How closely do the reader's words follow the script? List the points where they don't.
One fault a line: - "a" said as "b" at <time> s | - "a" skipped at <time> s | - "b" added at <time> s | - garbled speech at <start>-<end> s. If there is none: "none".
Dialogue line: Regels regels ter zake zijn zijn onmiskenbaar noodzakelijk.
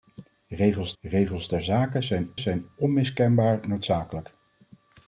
none